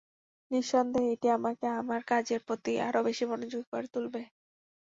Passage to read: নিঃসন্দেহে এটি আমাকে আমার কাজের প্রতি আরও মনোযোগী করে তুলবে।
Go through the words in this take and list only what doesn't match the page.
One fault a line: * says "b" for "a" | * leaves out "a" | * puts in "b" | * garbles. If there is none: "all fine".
* puts in "বেশি"